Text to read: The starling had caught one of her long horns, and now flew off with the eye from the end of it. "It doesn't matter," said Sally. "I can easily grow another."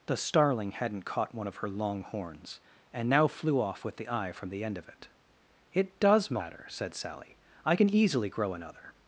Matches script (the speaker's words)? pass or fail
fail